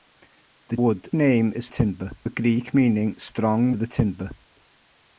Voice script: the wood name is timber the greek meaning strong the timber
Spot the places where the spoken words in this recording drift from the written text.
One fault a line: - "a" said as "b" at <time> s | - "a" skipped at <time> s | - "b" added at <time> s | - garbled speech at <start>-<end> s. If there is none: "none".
none